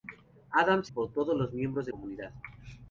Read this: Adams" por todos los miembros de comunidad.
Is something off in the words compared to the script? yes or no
no